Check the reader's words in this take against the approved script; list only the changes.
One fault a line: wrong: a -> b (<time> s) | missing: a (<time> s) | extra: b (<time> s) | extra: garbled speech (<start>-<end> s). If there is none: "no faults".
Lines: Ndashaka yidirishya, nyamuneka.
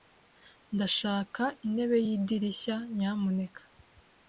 extra: intebe (1.7 s)